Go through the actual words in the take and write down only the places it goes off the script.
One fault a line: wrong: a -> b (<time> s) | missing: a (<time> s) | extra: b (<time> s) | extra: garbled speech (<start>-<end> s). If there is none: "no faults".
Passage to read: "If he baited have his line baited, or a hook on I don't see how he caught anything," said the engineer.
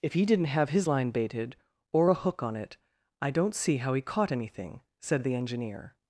wrong: baited -> didn't (0.2 s)
extra: it (2.6 s)